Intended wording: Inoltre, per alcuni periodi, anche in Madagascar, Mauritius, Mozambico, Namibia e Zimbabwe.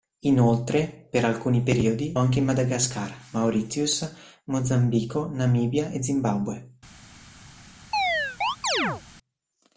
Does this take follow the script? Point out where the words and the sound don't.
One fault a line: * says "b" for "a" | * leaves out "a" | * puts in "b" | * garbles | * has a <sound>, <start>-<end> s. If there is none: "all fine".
* has a chirp, 7.9-9.0 s